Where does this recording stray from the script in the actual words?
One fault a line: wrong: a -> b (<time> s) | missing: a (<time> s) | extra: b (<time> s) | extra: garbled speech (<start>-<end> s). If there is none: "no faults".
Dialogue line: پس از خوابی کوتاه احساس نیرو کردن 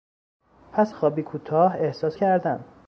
missing: از (0.9 s)
missing: نیرو (2.2 s)